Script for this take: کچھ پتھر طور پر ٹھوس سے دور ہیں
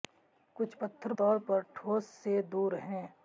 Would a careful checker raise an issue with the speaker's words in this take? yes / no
no